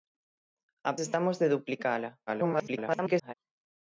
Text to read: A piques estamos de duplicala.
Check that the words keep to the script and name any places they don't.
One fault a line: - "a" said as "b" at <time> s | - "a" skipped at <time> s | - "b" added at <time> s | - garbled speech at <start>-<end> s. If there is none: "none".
- "piques" skipped at 0.9 s
- garbled speech at 2.3-3.3 s